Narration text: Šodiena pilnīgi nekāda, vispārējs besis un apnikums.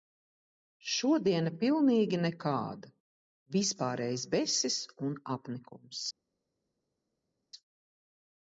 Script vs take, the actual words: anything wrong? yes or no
no